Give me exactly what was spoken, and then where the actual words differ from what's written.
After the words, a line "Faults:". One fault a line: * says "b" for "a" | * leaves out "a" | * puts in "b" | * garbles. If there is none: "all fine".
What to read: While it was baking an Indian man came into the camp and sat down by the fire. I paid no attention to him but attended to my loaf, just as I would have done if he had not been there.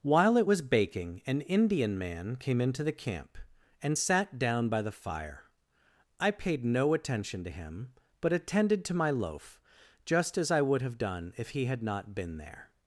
While it was baking an Indian man came into the camp and sat down by the fire. I paid no attention to him but attended to my loaf, just as I would have done if he had not been there.
Faults:
all fine